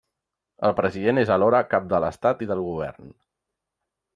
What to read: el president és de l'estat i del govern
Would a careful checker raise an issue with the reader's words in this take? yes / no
yes